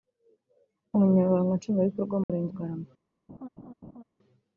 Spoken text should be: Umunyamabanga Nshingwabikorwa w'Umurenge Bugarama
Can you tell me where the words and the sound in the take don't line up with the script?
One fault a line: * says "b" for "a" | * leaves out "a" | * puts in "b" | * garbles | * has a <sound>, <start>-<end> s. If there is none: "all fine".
* has a dropout, 2.2-2.3 s
* has a laugh, 3.3-4.0 s